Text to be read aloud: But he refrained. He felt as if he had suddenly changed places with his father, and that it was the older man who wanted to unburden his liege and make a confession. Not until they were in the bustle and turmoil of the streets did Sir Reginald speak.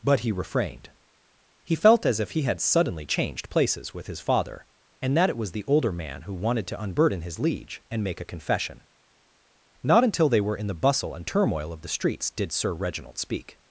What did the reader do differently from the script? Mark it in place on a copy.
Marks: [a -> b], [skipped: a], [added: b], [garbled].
But he refrained. He felt as if he had suddenly changed places with his father, and that it was the older man who wanted to unburden his liege and make a confession. Not until they were in the bustle and turmoil of the streets did Sir Reginald speak.